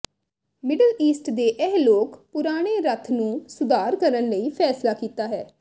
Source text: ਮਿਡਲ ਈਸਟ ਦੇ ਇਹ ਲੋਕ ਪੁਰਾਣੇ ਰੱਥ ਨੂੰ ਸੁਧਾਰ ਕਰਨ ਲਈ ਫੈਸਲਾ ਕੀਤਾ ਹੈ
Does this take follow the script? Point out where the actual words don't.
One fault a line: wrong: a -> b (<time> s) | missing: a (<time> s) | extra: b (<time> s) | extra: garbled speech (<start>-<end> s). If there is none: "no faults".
no faults